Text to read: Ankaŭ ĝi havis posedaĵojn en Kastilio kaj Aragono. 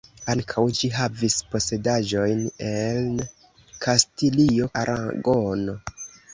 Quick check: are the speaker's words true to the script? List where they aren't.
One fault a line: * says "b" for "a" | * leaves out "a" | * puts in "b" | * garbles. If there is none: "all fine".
* leaves out "kaj"